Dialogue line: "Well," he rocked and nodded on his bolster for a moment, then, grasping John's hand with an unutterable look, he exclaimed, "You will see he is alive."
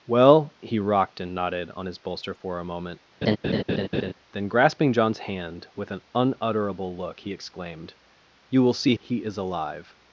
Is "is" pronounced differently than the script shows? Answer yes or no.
no